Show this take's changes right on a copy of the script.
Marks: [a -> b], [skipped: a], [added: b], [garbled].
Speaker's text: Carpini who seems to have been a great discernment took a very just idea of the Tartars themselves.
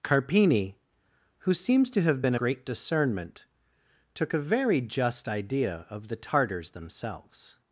Carpini who seems to have been a great discernment took a very just idea of the Tartars themselves.